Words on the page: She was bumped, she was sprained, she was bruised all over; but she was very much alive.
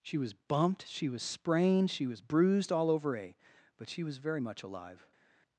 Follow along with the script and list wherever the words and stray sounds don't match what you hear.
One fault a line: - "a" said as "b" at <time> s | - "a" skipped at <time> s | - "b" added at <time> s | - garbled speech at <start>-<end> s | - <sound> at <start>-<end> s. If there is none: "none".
- "a" added at 3.2 s